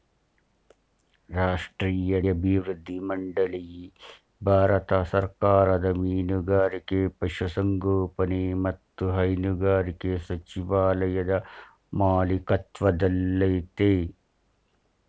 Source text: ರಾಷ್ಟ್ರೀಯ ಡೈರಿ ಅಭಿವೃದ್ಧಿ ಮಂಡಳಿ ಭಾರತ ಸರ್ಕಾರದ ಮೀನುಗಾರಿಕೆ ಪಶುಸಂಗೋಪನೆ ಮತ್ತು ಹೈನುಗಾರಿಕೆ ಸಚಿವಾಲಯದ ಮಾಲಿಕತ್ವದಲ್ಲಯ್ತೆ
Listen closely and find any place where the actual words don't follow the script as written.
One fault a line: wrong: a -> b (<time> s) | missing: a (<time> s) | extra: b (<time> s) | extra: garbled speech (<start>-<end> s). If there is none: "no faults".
missing: ಡೈರಿ (2.2 s)